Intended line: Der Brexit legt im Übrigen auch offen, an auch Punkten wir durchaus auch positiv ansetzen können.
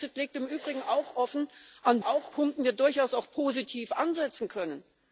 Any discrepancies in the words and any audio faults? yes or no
no